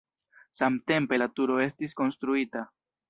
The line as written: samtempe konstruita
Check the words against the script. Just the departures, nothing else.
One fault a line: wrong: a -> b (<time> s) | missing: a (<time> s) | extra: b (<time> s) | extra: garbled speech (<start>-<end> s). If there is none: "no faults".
extra: la turo estis (1.2 s)